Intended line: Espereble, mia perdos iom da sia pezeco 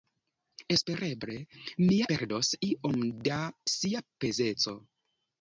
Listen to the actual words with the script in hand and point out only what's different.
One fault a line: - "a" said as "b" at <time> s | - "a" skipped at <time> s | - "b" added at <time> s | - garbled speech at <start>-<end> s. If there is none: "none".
none